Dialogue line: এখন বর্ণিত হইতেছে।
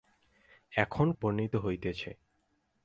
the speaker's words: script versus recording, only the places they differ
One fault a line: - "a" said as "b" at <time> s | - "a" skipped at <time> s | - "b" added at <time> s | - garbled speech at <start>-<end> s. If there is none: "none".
none